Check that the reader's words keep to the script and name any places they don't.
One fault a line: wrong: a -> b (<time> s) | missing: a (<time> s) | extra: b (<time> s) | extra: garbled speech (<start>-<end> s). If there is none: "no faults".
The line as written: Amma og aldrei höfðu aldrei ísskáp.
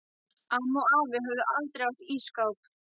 wrong: aldrei -> afi (1.0 s)
extra: átt (1.9 s)